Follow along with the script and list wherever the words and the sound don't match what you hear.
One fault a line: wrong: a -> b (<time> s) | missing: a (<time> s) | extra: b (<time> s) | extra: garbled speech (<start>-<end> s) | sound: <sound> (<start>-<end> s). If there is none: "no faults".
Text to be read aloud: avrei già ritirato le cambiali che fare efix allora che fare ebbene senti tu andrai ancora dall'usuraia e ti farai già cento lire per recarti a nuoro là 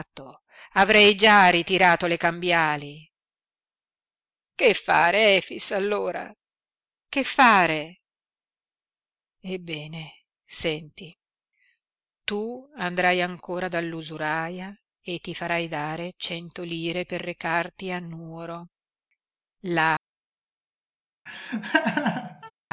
wrong: già -> dare (15.7 s)
sound: laugh (21.3-22.5 s)